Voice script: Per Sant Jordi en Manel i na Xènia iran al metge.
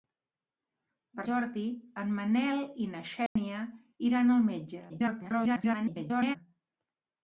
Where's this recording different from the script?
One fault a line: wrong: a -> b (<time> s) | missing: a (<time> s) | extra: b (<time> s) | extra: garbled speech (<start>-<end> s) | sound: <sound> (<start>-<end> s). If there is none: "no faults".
missing: Sant (1.2 s)
sound: dropout (3.3-3.4 s)
extra: garbled speech (4.9-6.4 s)